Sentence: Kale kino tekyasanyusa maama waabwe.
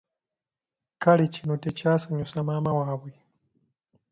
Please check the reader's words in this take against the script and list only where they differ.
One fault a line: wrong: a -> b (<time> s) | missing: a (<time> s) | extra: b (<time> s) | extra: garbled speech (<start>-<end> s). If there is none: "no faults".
no faults